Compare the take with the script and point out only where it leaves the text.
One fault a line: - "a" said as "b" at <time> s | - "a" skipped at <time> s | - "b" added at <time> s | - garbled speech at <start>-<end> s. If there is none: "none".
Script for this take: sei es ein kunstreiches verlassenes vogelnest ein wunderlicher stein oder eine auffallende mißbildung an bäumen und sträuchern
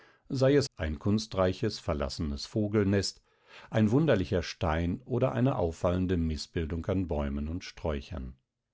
none